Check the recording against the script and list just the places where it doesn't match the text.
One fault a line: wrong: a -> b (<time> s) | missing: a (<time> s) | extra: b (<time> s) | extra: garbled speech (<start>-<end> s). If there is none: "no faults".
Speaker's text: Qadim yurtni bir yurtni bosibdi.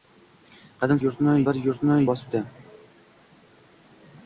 no faults